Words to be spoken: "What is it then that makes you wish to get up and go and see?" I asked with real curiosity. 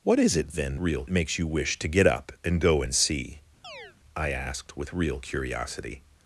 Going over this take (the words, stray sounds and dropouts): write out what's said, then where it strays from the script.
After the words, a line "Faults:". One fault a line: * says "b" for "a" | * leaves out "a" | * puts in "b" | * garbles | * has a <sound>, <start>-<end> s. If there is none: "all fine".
"What is it then real makes you wish to get up and go and see?" I asked with real curiosity.
Faults:
* says "real" for "that"
* has a chirp, 3.6-4.0 s